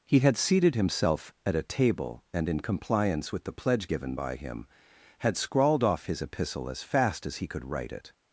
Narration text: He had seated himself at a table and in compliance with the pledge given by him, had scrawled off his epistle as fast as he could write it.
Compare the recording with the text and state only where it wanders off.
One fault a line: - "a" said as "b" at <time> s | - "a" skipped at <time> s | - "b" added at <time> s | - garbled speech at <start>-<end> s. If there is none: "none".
none